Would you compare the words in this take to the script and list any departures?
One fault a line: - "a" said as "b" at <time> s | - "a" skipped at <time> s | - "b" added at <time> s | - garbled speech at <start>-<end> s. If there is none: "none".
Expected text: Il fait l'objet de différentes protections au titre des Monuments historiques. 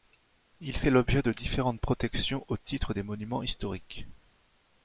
none